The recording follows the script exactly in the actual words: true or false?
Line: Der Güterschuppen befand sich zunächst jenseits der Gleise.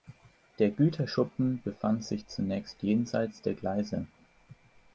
true